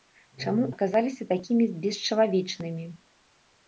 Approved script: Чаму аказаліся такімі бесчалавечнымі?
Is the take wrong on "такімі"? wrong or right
right